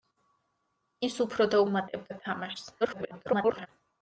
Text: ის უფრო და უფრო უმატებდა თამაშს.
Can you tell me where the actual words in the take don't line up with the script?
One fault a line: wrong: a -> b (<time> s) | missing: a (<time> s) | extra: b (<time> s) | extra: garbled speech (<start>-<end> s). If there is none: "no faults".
missing: უფრო (1.6 s)
extra: garbled speech (2.8-3.7 s)